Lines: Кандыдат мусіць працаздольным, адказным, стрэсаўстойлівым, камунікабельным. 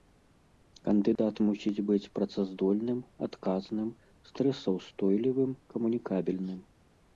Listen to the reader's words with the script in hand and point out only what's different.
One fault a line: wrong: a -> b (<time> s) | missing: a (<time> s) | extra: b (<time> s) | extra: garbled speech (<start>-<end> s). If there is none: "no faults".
extra: быць (1.9 s)